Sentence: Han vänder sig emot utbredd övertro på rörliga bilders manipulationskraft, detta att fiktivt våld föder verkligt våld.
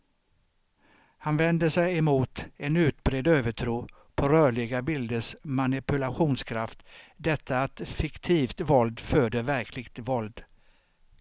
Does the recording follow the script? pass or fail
fail